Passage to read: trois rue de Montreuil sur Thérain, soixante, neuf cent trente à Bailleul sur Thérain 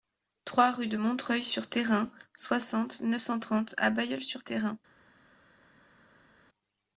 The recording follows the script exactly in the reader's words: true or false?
true